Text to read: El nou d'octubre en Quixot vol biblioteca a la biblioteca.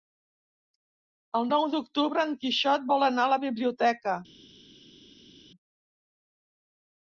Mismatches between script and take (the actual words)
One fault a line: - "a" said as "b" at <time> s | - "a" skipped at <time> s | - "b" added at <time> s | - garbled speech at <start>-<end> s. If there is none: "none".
- "biblioteca" said as "anar" at 3.1 s